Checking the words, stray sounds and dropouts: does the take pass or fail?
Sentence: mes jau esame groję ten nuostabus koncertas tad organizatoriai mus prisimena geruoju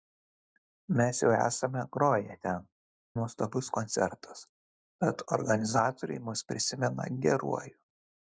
pass